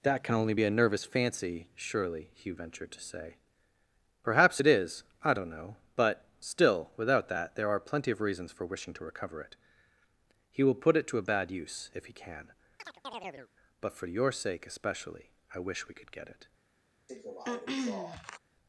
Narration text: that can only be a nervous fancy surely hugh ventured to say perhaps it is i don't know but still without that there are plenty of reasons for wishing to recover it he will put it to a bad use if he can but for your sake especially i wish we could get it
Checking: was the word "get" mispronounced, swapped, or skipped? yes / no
no